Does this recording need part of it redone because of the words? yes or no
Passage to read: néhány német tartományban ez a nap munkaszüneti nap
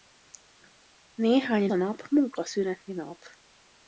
yes